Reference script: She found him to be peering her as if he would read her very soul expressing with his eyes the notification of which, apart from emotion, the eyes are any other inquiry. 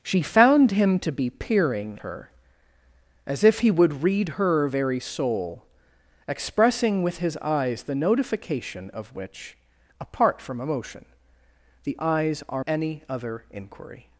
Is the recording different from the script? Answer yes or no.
no